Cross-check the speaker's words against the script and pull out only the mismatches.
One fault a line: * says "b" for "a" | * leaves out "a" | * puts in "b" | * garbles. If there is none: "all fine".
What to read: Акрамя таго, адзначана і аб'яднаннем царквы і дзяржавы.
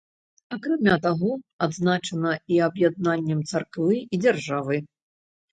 all fine